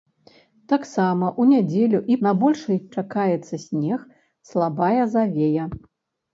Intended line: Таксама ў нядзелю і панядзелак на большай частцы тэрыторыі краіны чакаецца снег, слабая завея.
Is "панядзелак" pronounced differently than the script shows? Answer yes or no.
yes